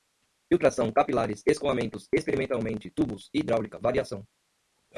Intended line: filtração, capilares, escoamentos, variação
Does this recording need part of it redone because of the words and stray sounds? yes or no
yes